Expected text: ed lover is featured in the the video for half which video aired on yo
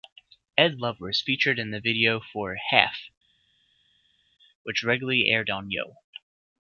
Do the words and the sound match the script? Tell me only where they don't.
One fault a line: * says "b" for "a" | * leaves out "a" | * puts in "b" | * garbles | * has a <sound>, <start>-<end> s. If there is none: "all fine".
* leaves out "the"
* says "regularly" for "video"